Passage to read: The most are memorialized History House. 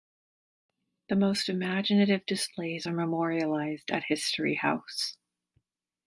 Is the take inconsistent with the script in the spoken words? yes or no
yes